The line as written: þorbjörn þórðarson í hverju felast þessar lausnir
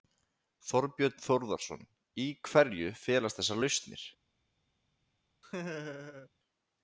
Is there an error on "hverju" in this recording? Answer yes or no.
no